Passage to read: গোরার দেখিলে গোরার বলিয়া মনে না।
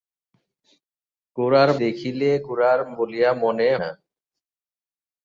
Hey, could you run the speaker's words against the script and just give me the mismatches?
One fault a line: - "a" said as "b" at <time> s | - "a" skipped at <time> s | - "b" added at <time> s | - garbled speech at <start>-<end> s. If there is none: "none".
none